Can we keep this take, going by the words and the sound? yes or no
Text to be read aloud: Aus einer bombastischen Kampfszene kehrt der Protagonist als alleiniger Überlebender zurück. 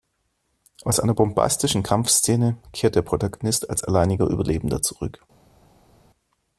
yes